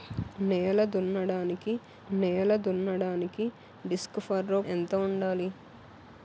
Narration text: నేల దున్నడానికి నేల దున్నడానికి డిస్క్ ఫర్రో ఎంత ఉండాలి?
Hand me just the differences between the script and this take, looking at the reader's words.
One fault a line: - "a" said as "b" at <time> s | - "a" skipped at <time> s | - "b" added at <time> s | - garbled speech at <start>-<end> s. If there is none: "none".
none